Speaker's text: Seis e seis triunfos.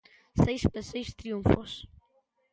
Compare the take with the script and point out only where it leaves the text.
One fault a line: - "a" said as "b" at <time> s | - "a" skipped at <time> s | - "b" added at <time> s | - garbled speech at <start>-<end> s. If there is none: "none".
none